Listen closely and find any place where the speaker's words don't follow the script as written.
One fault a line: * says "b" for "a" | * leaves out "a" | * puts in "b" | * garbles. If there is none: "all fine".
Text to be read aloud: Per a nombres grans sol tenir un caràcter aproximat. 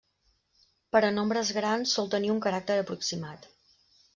all fine